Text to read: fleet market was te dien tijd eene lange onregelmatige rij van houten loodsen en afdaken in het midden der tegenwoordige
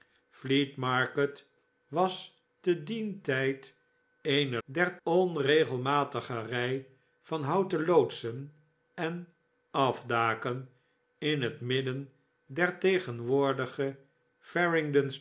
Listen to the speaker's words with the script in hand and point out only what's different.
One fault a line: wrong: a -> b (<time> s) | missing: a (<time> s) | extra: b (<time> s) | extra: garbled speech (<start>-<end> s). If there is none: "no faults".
wrong: lange -> der (4.6 s)